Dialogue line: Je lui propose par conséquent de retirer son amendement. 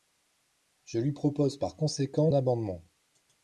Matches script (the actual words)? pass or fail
fail